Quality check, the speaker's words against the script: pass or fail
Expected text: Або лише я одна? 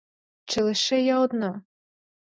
fail